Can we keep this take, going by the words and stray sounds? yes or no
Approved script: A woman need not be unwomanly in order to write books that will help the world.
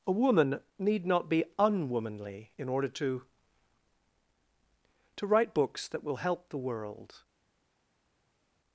no